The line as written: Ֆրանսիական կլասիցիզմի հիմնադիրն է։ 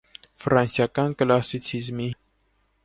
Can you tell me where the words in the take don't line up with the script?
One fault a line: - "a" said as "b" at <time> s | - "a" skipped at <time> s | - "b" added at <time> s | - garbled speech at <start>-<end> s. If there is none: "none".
- "հիմնադիրն" skipped at 2.1 s